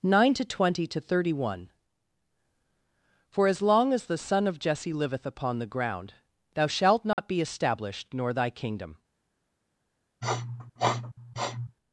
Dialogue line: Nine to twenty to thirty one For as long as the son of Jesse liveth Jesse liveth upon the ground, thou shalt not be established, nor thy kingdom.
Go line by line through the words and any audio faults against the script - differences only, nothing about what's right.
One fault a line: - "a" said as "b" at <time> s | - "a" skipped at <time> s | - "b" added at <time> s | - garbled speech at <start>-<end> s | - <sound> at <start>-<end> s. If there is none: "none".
- "Jesse liveth" skipped at 5.3 s
- dropout at 7.1-7.2 s
- sniff at 10.2-11.8 s